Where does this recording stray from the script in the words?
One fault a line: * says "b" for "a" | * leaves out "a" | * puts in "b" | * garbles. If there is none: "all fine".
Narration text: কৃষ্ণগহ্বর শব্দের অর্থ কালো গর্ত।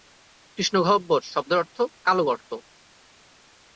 all fine